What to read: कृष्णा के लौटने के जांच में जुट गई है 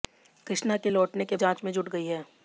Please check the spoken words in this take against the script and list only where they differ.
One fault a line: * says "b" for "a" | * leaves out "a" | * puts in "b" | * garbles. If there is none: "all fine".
all fine